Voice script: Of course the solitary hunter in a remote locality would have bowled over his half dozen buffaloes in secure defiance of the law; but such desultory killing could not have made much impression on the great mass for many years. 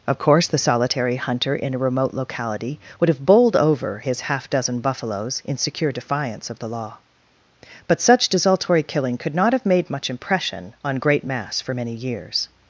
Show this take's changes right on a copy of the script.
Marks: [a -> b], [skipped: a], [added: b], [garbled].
Of course the solitary hunter in a remote locality would have bowled over his half dozen buffaloes in secure defiance of the law; but such desultory killing could not have made much impression on [skipped: the] great mass for many years.